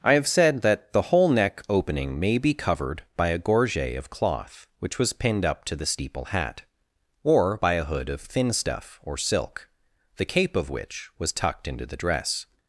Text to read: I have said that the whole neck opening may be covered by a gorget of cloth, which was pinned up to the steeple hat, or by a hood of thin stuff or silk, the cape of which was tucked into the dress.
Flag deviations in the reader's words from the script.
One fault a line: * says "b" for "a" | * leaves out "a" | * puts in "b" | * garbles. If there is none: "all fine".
all fine